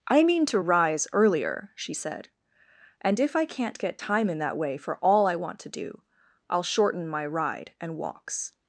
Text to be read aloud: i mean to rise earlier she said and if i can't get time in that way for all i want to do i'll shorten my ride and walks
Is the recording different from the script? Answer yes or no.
no